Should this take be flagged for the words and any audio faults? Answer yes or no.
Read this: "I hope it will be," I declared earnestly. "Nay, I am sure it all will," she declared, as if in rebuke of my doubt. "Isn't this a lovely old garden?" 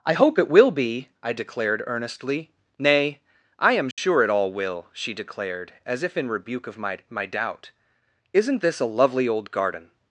yes